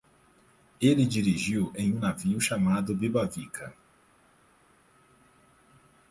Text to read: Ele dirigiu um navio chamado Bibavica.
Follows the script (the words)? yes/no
no